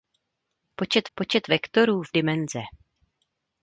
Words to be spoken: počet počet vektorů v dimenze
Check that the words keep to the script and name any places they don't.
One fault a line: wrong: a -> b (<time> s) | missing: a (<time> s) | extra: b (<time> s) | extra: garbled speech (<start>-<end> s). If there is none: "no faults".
no faults